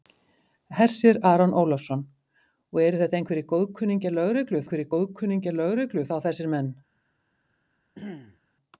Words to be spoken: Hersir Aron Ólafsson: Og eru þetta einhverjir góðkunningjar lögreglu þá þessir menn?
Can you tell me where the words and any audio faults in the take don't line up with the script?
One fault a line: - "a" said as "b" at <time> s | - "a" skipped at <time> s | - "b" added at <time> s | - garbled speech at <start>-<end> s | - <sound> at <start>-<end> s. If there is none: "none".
- "einhverjir góðkunningjar lögreglu" added at 4.6 s
- throat clearing at 7.9-8.4 s